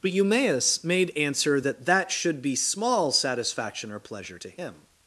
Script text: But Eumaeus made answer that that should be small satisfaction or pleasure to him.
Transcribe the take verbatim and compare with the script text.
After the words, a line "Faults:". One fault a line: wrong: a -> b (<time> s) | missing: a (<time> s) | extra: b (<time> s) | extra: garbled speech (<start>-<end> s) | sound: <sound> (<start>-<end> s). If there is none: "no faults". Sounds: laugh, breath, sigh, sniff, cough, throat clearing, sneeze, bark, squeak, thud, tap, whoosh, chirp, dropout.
But Eumaeus made answer that that should be small satisfaction or pleasure to him.
Faults:
no faults